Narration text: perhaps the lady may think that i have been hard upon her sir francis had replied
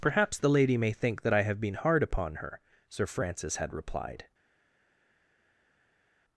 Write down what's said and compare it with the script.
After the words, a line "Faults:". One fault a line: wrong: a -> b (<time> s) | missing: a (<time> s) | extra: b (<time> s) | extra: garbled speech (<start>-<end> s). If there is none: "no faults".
perhaps the lady may think that i have been hard upon her sir francis had replied
Faults:
no faults